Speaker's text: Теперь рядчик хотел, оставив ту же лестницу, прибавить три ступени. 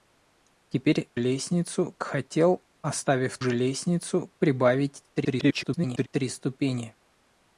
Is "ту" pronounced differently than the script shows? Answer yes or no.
yes